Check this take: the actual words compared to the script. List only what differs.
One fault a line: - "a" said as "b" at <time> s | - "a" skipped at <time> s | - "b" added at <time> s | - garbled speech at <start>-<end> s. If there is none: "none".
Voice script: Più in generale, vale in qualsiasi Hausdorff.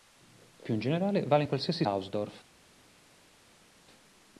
none